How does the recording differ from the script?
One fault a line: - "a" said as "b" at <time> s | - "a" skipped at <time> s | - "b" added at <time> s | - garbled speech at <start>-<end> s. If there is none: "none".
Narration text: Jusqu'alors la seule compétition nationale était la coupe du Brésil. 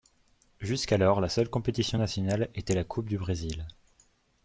none